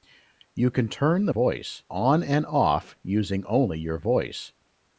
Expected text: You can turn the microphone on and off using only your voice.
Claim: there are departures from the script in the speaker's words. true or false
true